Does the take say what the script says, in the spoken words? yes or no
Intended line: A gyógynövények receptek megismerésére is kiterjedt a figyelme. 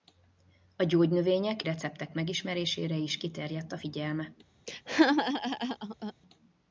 yes